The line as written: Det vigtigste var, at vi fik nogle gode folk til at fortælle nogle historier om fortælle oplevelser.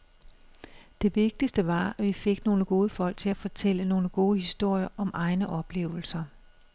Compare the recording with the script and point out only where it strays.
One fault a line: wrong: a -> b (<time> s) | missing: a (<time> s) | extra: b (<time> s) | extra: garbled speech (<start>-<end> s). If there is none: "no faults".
extra: gode (4.1 s)
wrong: fortælle -> egne (5.1 s)